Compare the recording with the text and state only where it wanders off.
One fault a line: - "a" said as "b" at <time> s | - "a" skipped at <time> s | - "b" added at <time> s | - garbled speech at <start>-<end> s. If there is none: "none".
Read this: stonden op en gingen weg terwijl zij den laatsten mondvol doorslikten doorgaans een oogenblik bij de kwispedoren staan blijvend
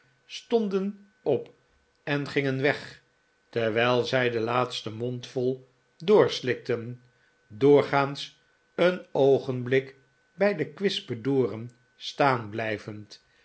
none